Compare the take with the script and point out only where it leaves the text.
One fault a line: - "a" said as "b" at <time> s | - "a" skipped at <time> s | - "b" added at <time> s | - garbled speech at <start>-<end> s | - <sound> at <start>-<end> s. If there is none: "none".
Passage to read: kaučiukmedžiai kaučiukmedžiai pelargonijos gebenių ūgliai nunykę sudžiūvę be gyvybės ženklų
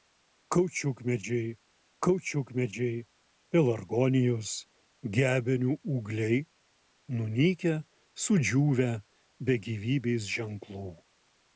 none